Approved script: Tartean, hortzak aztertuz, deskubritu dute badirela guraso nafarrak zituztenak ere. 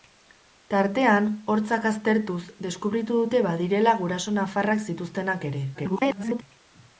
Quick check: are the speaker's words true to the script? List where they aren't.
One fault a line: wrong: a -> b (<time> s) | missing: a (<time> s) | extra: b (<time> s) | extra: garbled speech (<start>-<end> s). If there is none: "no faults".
extra: garbled speech (5.7-6.4 s)